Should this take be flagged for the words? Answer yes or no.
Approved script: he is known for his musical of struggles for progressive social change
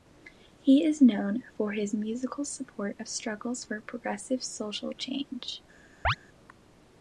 yes